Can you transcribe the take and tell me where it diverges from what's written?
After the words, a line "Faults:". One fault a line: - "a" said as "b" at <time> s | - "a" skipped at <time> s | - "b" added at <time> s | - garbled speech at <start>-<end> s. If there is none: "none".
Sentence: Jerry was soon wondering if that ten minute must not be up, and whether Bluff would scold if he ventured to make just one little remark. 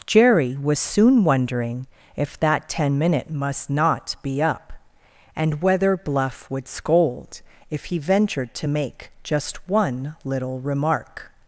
Jerry was soon wondering if that ten minute must not be up, and whether Bluff would scold if he ventured to make just one little remark.
Faults:
none